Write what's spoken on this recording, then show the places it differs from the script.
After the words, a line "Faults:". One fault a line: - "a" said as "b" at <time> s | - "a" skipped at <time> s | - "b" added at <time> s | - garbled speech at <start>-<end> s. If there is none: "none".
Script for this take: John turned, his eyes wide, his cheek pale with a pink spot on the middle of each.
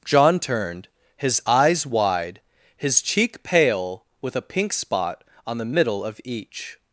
John turned, his eyes wide, his cheek pale with a pink spot on the middle of each.
Faults:
none